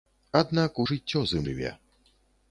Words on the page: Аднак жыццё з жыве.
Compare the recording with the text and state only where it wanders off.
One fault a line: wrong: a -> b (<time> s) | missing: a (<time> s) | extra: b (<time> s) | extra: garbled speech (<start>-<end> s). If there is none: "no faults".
no faults